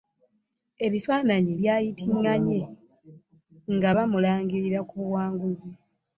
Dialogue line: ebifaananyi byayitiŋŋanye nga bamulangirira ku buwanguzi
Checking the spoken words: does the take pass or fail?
pass